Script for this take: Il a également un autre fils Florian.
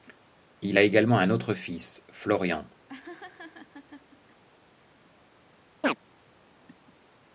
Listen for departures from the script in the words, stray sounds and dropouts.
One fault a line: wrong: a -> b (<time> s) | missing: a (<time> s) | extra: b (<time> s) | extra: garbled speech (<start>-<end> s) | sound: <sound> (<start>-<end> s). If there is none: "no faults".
sound: laugh (2.9-4.4 s)
sound: chirp (5.8-6.0 s)